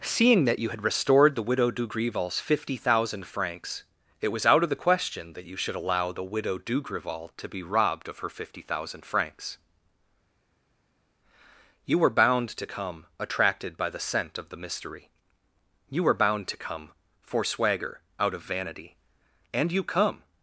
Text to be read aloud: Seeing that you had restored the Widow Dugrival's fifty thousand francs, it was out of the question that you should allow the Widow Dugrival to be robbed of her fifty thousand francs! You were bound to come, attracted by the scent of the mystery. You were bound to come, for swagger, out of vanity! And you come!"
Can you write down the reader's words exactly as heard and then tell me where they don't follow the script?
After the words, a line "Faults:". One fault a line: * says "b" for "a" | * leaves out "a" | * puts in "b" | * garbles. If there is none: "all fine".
Seeing that you had restored the Widow Dugrival's fifty thousand francs, it was out of the question that you should allow the Widow Dugrival to be robbed of her fifty thousand francs! You were bound to come, attracted by the scent of the mystery. You were bound to come, for swagger, out of vanity! And you come!"
Faults:
all fine